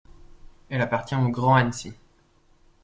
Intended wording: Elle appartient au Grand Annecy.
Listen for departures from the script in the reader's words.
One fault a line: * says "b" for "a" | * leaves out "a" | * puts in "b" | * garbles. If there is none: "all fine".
all fine